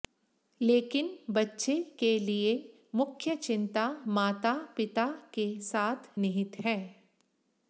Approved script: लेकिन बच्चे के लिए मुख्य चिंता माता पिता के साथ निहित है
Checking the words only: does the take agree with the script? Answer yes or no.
yes